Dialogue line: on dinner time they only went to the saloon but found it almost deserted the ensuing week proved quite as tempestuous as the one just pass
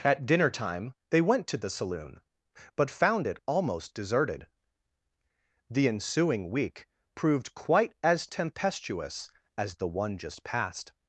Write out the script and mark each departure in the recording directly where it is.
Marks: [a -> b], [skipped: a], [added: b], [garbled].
[on -> at] dinner time they [skipped: only] went to the saloon but found it almost deserted the ensuing week proved quite as tempestuous as the one just [pass -> passed]